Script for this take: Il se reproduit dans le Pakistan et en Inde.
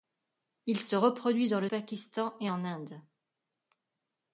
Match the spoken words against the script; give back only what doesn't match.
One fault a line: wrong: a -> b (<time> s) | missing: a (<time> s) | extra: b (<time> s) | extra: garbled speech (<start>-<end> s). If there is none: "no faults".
no faults